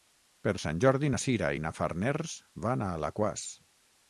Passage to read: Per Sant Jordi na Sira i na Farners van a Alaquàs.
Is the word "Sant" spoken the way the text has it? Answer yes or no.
yes